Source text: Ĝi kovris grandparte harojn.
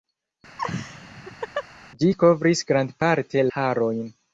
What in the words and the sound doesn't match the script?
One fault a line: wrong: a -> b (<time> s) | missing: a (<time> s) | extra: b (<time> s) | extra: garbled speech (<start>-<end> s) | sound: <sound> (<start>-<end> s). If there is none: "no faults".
sound: laugh (0.6-1.7 s)